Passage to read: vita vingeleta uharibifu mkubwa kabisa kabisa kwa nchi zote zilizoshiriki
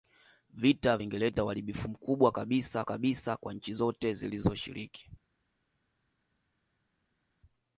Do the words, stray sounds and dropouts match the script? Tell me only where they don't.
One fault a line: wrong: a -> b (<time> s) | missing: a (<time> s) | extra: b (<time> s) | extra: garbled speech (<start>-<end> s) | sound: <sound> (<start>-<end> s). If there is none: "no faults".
no faults